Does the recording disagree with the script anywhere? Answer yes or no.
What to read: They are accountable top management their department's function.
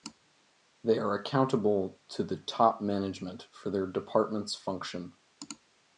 yes